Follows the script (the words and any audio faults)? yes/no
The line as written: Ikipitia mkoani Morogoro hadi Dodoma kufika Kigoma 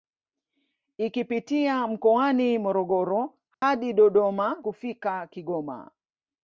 no